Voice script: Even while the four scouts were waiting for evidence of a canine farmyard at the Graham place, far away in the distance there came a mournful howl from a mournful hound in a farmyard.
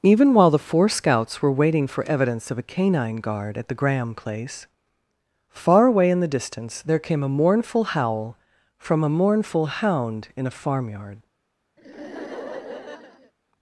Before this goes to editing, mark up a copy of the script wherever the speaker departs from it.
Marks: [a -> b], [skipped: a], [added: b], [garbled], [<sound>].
Even while the four scouts were waiting for evidence of a canine [farmyard -> guard] at the Graham place, far away in the distance there came a mournful howl from a mournful hound in a farmyard. [laugh]